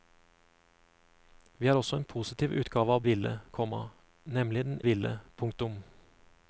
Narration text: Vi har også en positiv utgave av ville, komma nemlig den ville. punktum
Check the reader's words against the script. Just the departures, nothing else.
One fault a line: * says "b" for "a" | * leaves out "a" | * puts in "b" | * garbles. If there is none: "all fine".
all fine